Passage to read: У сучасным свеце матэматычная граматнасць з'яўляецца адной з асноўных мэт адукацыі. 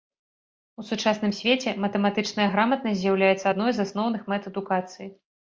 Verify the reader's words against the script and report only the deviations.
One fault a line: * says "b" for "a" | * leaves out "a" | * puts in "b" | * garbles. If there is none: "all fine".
all fine